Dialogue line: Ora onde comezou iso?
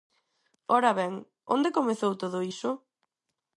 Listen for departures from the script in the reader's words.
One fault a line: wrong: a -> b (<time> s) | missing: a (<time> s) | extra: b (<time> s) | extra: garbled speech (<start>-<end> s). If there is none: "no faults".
extra: ben (1.0 s)
extra: todo (2.2 s)